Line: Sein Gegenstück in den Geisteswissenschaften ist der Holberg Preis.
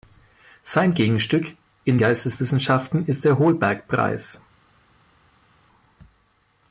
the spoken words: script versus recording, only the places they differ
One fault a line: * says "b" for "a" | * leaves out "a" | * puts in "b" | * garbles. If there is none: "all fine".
* leaves out "den"